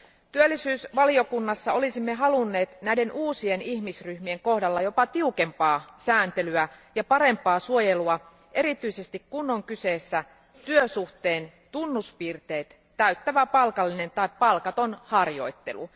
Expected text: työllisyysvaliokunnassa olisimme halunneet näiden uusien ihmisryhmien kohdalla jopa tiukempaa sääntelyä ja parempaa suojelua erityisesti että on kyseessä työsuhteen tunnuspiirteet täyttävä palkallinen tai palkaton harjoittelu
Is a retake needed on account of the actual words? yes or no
yes